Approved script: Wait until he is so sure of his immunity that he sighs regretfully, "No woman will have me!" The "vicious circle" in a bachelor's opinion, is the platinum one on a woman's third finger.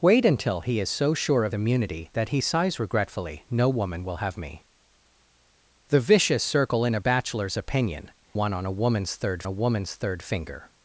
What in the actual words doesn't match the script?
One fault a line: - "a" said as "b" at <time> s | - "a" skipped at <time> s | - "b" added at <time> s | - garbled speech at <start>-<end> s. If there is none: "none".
- "his" skipped at 1.6 s
- "is the platinum one on" said as "one on a woman's third" at 8.3 s